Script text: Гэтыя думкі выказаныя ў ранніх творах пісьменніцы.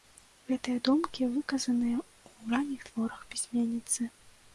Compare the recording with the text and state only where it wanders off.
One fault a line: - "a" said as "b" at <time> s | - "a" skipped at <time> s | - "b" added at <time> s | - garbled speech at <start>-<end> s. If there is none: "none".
none